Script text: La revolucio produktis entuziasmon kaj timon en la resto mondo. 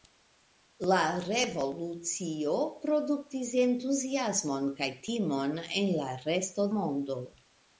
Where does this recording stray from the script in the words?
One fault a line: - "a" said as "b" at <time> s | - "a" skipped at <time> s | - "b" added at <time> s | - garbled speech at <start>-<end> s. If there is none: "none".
none